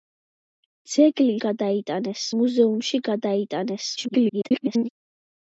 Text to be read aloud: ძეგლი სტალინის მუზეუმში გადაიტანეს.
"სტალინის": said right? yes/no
no